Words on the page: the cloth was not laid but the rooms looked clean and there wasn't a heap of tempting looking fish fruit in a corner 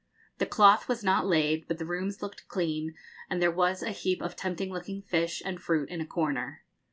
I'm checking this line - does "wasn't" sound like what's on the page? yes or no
no